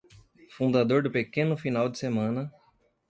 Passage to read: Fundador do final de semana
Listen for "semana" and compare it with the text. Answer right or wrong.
right